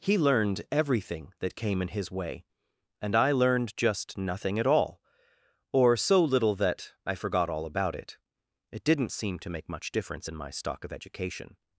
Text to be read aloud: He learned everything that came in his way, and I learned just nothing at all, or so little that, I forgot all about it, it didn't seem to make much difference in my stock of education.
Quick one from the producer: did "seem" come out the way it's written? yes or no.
yes